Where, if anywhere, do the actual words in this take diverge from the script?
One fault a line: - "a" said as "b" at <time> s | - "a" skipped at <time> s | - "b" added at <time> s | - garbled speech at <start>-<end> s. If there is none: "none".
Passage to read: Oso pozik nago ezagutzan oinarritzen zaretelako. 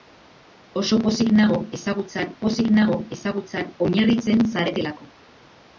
- "pozik nago ezagutzan" added at 2.4 s